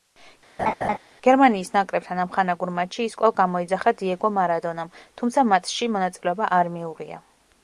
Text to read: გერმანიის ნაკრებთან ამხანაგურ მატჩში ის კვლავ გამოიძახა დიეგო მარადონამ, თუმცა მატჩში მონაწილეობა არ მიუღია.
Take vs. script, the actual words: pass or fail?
pass